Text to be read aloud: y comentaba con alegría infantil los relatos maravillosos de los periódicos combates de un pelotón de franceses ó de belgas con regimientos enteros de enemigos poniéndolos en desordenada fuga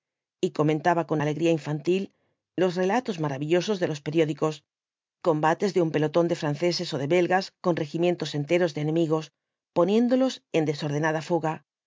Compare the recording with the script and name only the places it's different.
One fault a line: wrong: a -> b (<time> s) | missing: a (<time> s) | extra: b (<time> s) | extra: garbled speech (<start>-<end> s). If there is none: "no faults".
no faults